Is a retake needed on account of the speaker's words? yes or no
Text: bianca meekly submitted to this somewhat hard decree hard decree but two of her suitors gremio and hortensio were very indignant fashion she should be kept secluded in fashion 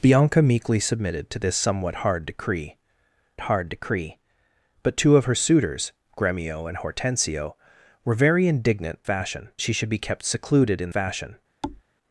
no